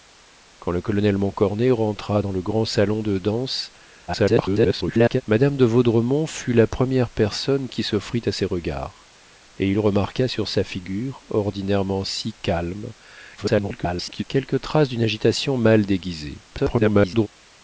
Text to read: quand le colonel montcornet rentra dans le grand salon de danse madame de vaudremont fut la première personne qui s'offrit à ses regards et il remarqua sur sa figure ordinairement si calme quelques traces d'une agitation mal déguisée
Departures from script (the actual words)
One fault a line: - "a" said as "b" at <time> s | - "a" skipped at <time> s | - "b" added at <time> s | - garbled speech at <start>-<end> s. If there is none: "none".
- garbled speech at 4.1-5.2 s
- garbled speech at 13.4-14.2 s
- garbled speech at 16.5-17.3 s